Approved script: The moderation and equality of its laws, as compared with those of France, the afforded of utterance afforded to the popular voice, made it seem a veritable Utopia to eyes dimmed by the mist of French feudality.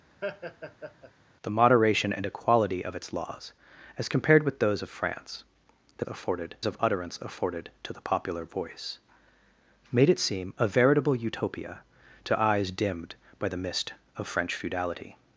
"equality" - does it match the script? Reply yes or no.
yes